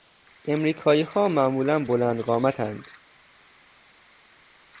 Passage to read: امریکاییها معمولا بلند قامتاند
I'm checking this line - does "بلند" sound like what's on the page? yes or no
yes